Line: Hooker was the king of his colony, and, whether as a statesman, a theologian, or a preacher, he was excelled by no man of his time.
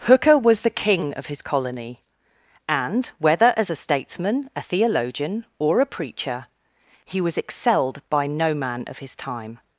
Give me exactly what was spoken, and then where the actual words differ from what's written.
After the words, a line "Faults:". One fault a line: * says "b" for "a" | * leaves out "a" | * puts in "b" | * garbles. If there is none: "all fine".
Hooker was the king of his colony, and, whether as a statesman, a theologian, or a preacher, he was excelled by no man of his time.
Faults:
all fine